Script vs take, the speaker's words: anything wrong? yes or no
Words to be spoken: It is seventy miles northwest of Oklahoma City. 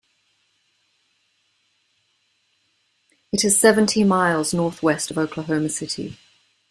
no